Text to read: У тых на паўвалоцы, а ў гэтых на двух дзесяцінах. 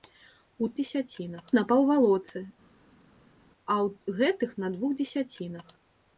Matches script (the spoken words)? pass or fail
fail